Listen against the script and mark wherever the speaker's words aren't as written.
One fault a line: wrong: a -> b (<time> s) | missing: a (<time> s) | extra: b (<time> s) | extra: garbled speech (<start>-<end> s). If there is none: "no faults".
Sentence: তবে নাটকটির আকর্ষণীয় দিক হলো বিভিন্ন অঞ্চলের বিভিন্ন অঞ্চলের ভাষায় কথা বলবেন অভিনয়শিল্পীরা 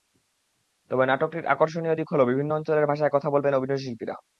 missing: বিভিন্ন অঞ্চলের (2.9 s)